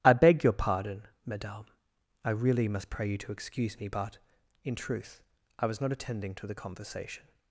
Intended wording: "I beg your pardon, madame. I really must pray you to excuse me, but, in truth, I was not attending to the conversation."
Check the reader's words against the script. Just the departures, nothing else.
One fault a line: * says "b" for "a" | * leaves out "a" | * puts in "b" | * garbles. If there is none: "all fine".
all fine